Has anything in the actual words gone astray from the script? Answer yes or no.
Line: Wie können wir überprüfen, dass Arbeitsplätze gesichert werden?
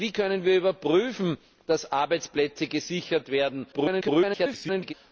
yes